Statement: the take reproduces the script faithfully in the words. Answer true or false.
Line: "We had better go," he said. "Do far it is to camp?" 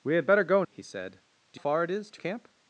true